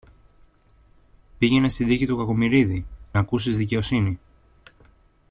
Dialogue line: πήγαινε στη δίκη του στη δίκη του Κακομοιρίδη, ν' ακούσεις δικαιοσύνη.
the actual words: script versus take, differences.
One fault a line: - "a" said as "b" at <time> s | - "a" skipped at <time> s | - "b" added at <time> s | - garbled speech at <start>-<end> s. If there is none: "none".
- "στη δίκη του" skipped at 2.2 s